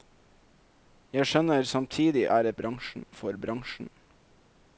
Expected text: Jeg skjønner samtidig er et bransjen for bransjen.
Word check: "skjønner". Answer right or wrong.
right